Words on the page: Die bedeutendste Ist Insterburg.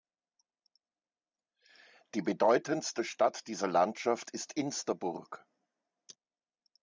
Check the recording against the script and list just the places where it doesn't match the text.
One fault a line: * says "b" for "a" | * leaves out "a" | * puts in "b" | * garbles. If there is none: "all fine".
* puts in "Stadt dieser Landschaft"